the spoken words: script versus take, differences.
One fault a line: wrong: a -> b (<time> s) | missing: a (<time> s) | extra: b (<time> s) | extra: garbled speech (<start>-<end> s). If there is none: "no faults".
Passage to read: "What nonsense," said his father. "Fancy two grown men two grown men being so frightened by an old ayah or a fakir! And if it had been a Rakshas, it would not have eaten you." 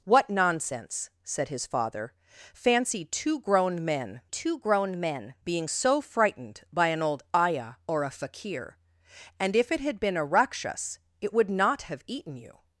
no faults